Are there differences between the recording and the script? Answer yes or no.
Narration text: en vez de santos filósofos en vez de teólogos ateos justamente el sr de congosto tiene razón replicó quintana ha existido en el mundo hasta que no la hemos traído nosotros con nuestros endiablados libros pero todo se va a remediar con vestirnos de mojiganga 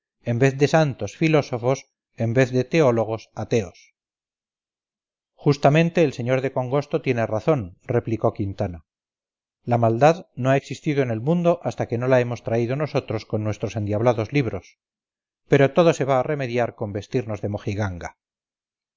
yes